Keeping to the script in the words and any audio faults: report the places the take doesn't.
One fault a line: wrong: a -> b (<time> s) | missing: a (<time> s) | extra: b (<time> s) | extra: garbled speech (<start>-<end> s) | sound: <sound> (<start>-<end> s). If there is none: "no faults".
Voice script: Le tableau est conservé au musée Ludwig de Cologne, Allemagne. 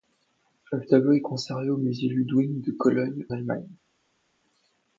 no faults